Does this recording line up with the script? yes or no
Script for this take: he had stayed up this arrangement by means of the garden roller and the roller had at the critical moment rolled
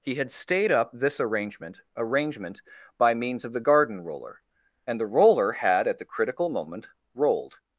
no